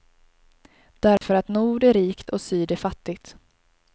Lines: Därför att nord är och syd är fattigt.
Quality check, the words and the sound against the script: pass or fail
fail